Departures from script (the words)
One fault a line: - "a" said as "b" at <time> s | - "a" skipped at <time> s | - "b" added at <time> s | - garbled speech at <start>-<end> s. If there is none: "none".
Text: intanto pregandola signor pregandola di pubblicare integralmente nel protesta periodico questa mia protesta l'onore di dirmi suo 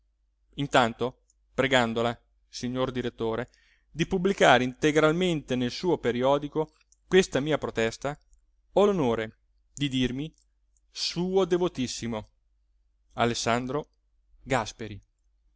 - "pregandola" said as "direttore" at 2.9 s
- "protesta" said as "suo" at 5.7 s
- "ho" added at 8.7 s